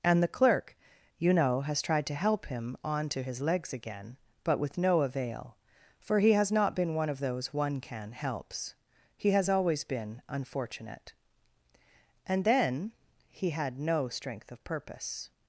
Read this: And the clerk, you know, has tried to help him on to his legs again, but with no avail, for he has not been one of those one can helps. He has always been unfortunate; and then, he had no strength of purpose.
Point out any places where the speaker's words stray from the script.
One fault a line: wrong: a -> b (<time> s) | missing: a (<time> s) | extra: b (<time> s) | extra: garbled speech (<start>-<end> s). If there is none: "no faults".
no faults